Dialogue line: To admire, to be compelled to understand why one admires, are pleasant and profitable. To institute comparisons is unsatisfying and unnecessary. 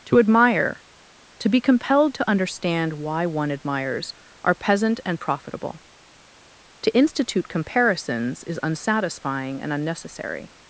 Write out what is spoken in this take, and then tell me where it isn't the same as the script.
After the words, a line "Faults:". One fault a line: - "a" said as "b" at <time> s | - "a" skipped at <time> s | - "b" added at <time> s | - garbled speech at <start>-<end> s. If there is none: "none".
To admire, to be compelled to understand why one admires, are peasant and profitable. To institute comparisons is unsatisfying and unnecessary.
Faults:
- "pleasant" said as "peasant" at 4.5 s